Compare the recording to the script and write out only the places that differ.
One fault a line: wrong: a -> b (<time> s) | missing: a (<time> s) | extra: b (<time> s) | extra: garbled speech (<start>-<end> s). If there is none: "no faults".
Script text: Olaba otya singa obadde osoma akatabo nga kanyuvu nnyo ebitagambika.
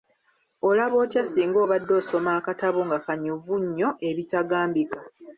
no faults